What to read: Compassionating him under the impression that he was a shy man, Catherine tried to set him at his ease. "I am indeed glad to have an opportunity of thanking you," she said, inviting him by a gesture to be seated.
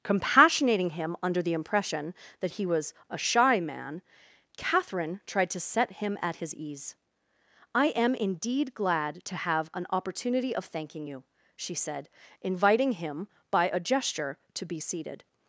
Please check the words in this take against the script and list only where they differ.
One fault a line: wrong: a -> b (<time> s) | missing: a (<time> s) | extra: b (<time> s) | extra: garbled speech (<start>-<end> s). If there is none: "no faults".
no faults